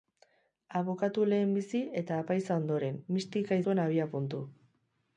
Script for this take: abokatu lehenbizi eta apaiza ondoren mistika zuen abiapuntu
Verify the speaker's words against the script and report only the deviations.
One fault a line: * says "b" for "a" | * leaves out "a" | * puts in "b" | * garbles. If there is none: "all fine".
all fine